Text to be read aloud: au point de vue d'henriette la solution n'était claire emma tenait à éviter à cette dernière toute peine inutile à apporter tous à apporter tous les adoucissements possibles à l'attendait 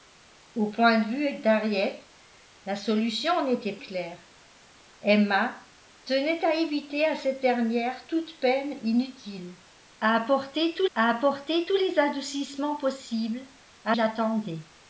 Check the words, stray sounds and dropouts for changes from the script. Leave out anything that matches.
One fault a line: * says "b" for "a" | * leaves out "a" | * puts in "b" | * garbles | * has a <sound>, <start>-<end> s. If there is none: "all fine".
all fine